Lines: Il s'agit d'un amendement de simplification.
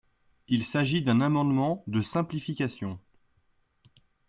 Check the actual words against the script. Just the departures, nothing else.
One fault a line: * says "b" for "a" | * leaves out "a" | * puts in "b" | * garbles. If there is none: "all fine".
all fine